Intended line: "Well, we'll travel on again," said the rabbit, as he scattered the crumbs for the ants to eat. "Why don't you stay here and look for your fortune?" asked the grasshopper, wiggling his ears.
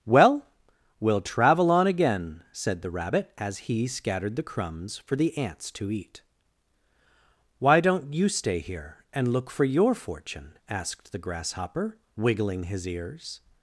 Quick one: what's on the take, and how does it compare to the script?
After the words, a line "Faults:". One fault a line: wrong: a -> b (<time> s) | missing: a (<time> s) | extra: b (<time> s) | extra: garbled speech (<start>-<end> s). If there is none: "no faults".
"Well, we'll travel on again," said the rabbit, as he scattered the crumbs for the ants to eat. "Why don't you stay here and look for your fortune?" asked the grasshopper, wiggling his ears.
Faults:
no faults